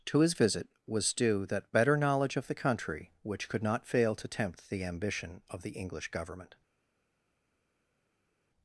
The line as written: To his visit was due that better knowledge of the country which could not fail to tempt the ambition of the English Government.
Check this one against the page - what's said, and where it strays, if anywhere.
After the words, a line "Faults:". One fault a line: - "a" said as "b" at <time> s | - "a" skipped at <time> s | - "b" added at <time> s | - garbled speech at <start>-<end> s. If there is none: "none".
To his visit was due that better knowledge of the country which could not fail to tempt the ambition of the English Government.
Faults:
none